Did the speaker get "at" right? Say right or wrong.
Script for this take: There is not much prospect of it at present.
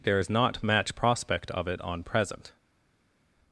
wrong